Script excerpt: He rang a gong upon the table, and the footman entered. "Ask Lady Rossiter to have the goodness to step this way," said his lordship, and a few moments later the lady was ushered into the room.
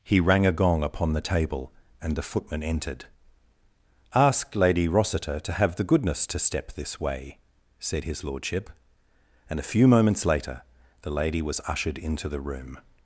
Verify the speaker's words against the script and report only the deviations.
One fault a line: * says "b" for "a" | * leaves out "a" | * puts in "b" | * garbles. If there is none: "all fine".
all fine